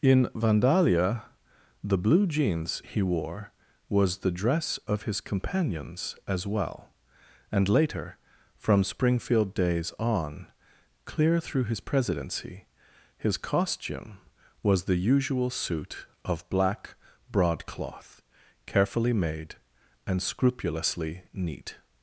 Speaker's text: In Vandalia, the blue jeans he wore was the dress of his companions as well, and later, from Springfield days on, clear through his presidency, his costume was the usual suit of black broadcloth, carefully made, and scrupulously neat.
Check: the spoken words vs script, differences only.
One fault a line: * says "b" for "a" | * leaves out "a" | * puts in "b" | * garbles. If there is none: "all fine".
all fine